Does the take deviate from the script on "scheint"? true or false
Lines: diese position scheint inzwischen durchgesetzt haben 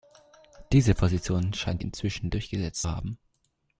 false